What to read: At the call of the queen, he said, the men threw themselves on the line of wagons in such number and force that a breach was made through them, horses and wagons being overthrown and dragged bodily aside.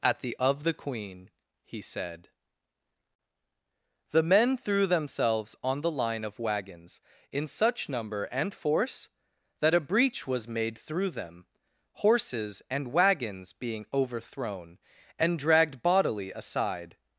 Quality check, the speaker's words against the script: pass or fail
fail